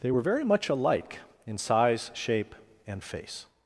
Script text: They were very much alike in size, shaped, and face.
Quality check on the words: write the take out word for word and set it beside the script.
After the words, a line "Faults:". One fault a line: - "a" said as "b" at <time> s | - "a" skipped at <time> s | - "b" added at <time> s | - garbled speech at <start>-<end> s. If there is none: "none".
They were very much alike in size, shape, and face.
Faults:
- "shaped" said as "shape" at 2.1 s